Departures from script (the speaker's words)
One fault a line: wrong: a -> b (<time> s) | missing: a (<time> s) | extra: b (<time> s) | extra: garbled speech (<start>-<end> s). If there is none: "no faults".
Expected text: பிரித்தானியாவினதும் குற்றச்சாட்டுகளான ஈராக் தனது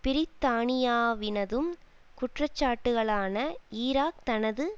no faults